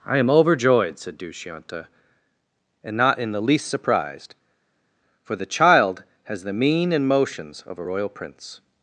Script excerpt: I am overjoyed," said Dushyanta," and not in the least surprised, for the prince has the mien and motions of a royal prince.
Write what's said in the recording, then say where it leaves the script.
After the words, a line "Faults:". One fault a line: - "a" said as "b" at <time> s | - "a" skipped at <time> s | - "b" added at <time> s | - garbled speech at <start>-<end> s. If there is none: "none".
I am overjoyed," said Dushyanta," and not in the least surprised, for the child has the mien and motions of a royal prince.
Faults:
- "prince" said as "child" at 5.5 s